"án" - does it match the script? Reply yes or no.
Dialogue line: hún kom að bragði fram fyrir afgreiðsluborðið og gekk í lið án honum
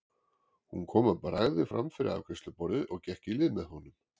no